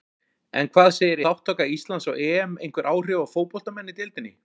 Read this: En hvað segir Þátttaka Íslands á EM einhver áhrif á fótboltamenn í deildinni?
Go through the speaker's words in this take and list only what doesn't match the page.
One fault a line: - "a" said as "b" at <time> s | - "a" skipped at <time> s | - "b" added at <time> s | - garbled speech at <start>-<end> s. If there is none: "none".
none